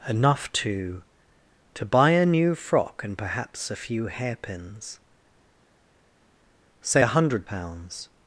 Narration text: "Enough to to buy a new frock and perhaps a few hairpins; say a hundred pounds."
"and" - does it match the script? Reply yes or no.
yes